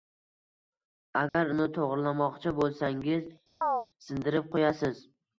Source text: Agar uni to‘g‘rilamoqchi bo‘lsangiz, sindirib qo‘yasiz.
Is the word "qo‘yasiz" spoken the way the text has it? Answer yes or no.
yes